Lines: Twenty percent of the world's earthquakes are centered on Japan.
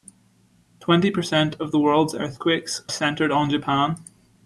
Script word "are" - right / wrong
wrong